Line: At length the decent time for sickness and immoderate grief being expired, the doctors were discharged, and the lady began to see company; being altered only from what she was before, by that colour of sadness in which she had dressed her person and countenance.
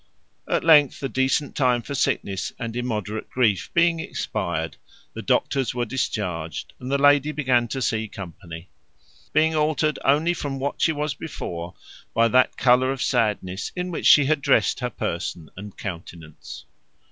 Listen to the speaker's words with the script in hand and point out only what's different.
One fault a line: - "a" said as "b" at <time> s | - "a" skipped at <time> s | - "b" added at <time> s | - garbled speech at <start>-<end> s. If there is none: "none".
none